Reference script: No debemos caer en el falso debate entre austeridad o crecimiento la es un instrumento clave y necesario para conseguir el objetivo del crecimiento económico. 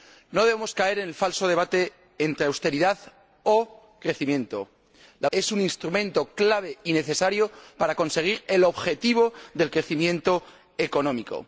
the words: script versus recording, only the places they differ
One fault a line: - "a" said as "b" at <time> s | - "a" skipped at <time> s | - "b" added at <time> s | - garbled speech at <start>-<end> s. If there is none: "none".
none